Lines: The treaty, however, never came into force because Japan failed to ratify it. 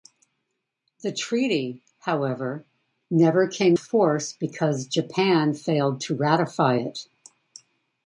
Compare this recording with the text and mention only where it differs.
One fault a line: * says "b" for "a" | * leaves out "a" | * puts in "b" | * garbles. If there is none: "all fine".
* leaves out "into"